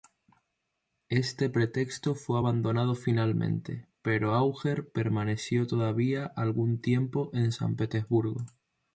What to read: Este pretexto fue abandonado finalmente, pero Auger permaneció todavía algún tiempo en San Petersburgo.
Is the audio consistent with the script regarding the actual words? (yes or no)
yes